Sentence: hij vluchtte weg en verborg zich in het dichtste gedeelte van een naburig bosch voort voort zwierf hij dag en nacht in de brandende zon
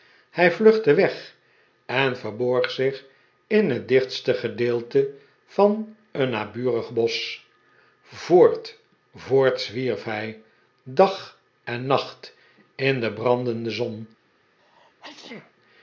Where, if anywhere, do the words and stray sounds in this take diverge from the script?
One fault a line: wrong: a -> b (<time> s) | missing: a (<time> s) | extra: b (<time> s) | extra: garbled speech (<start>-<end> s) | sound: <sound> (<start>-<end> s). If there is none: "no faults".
sound: sneeze (14.6-15.5 s)